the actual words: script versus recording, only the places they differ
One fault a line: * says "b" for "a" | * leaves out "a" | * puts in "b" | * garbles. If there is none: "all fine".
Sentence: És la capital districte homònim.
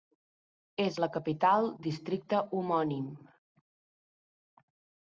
all fine